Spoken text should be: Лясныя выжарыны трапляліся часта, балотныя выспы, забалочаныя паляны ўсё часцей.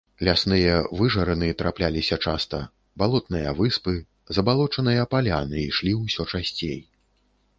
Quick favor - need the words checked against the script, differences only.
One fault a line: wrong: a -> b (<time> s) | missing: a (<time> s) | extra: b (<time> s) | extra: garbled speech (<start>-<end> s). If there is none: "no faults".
extra: ішлі (5.7 s)